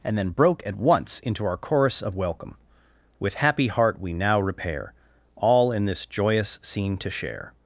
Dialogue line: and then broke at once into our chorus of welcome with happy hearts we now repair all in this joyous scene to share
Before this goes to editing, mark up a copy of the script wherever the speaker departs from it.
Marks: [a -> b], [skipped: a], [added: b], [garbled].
and then broke at once into our chorus of welcome with happy [hearts -> heart] we now repair all in this joyous scene to share